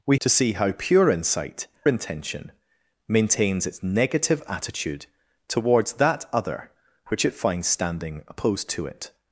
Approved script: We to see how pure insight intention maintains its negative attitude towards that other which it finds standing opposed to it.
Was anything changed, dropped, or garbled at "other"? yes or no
no